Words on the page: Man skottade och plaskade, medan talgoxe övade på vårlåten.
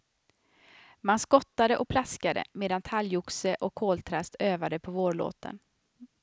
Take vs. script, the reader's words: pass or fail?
fail